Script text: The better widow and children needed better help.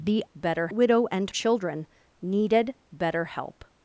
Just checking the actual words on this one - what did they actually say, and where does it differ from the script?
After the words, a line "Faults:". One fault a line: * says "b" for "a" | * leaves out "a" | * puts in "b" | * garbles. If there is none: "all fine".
The better widow and children needed better help.
Faults:
all fine